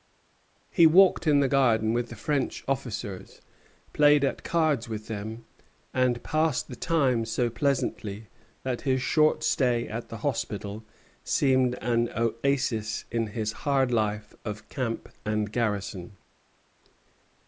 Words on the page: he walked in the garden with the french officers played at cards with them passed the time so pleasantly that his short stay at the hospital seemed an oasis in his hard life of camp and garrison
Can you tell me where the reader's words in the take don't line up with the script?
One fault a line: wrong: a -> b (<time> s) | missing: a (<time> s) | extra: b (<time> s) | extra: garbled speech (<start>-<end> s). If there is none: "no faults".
extra: and (5.9 s)